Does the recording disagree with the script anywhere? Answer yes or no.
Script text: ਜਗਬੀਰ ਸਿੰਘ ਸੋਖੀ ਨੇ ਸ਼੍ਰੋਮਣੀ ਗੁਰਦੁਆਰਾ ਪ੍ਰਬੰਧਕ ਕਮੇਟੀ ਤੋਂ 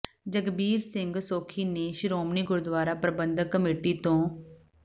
no